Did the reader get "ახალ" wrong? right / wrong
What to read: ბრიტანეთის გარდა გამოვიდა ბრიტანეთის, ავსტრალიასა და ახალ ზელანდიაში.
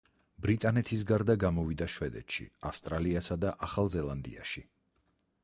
right